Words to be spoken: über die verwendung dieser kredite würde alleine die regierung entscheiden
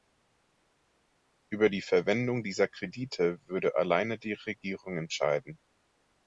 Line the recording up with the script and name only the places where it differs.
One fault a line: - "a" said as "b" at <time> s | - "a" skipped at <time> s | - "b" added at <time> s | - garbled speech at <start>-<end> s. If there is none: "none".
none